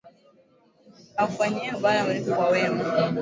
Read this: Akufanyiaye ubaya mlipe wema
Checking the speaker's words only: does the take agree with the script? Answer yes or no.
no